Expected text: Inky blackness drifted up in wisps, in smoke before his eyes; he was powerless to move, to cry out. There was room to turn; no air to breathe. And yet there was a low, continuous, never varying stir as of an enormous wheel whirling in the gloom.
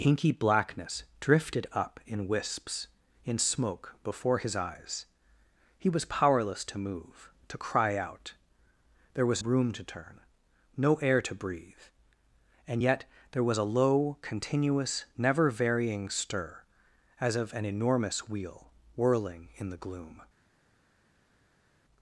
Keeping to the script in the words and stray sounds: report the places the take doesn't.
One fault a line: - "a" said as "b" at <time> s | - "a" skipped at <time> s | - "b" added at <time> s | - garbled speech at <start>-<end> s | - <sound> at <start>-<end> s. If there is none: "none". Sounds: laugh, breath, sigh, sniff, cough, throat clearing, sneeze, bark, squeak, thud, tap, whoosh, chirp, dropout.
none